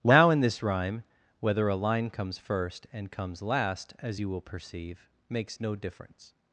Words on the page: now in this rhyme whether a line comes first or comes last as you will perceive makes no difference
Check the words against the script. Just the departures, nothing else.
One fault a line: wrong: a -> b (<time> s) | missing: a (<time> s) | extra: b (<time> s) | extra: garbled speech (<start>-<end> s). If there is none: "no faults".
wrong: or -> and (2.9 s)